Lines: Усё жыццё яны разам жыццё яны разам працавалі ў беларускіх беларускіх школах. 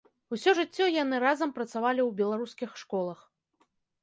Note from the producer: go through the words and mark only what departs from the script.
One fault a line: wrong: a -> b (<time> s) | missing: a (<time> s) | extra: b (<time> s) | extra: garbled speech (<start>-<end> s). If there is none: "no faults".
missing: жыццё яны разам (1.5 s)
missing: беларускіх (2.7 s)